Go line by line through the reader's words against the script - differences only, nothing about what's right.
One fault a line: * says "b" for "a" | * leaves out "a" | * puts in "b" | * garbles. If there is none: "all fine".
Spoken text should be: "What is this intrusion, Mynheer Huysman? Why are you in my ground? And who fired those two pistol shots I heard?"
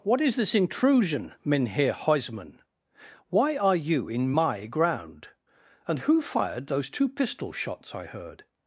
all fine